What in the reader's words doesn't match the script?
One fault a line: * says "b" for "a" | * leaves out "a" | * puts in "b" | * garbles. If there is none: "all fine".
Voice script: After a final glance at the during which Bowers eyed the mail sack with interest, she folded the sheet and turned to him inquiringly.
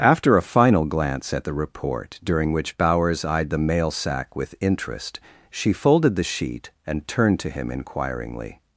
* puts in "report"